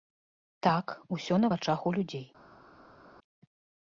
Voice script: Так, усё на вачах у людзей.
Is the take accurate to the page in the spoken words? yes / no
yes